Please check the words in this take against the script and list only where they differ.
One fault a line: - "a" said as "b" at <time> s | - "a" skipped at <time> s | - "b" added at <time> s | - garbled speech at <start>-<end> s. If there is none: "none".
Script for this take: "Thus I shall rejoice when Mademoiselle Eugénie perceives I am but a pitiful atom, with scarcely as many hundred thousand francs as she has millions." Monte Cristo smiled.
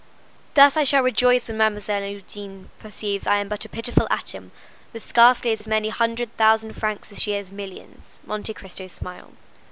- "as" added at 5.6 s